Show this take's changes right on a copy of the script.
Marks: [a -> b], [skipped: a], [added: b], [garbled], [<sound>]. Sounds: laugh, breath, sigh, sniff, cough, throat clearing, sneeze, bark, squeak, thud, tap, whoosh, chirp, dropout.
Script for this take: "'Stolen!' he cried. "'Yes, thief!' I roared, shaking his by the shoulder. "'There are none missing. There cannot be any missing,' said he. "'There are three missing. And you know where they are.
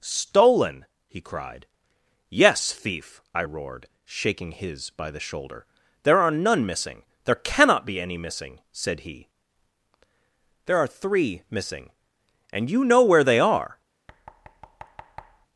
"'Stolen!' he cried. "'Yes, thief!' I roared, shaking his by the shoulder. "'There are none missing. There cannot be any missing,' said he. "'There are three missing. And you know where they are. [thud]